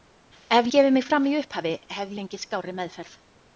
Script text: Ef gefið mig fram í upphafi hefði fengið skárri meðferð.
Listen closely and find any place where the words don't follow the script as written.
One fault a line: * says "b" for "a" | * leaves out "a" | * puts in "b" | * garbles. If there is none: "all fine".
all fine